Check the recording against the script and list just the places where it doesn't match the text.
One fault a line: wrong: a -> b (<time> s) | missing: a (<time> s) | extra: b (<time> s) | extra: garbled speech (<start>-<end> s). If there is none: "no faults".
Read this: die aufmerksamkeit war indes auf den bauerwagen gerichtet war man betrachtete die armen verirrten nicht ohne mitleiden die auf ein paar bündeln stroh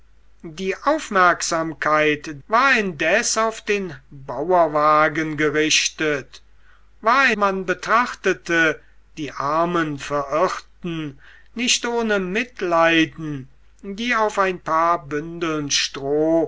no faults